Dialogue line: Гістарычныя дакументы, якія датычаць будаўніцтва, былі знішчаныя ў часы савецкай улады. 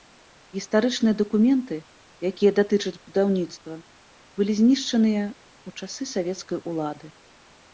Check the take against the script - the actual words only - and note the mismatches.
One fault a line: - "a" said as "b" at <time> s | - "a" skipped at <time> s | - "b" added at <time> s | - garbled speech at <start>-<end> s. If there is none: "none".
none